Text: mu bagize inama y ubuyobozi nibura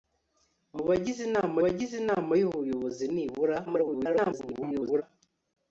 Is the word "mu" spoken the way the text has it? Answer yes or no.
yes